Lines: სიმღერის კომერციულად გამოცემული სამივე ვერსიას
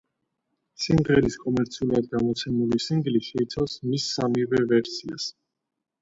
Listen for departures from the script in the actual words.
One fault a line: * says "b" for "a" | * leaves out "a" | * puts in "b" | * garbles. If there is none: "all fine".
* puts in "სინგლი შეიცავს მის"